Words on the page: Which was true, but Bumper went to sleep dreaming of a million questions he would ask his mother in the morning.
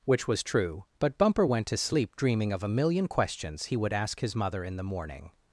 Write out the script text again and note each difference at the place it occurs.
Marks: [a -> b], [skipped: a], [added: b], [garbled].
Which was true, but Bumper went to sleep dreaming of a million questions he would ask his mother in the morning.